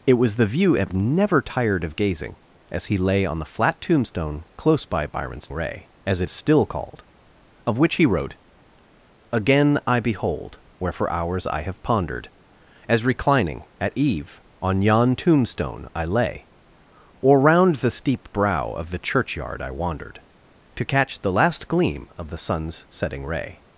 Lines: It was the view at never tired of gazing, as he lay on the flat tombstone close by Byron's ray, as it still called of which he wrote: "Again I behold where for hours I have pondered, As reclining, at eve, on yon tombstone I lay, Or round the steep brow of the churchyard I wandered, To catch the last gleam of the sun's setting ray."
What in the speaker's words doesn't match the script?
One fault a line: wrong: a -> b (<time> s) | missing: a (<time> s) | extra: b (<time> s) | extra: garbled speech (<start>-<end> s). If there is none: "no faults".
no faults